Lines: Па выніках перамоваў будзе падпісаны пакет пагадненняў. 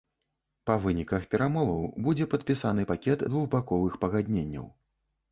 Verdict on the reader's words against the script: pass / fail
fail